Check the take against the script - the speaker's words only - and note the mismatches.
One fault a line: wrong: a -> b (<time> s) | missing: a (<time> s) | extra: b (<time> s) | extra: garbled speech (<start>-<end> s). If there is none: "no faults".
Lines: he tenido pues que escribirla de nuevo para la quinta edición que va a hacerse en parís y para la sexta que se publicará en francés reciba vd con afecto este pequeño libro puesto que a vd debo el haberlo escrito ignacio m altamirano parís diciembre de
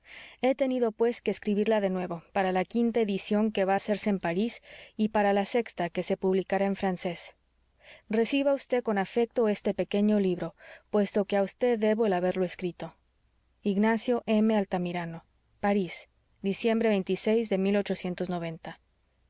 no faults